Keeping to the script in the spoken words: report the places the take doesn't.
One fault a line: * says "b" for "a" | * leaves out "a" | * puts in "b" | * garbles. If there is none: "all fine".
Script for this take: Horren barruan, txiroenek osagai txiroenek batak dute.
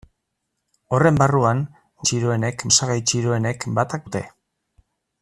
all fine